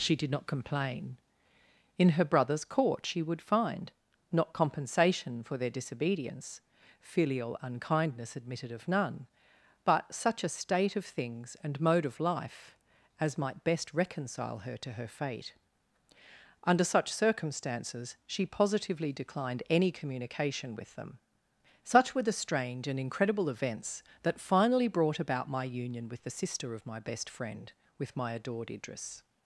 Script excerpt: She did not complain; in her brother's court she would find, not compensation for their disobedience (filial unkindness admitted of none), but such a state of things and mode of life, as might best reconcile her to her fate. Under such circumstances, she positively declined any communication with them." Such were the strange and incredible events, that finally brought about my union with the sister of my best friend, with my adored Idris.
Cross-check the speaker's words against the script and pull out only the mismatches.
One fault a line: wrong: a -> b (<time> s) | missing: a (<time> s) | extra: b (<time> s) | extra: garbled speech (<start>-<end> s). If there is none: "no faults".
no faults